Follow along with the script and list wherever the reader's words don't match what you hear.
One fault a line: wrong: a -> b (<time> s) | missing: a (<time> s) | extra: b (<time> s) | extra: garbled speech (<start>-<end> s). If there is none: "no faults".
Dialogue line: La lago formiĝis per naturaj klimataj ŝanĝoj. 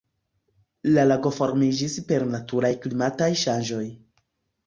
no faults